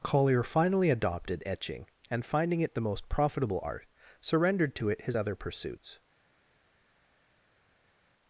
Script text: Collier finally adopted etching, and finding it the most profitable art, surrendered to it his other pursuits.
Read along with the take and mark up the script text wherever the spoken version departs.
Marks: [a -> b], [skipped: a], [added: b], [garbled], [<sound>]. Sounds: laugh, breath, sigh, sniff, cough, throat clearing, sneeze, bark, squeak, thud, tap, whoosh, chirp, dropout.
Collier finally adopted etching, and finding it the most profitable art, surrendered to it his other pursuits.